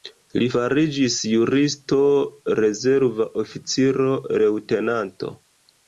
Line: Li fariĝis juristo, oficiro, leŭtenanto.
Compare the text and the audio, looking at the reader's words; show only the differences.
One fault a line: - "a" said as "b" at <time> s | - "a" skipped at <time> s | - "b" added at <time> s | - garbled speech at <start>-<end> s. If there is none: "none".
- "rezerva" added at 2.6 s